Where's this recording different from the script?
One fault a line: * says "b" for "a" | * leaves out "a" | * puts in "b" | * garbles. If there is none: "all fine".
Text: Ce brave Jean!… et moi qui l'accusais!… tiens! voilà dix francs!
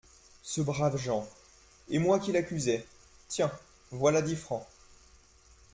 all fine